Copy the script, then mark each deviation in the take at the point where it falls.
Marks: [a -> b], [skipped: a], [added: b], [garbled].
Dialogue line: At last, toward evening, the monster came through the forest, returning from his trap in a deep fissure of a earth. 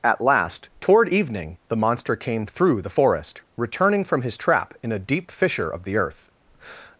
At last, toward evening, the monster came through the forest, returning from his trap in a deep fissure of [a -> the] earth.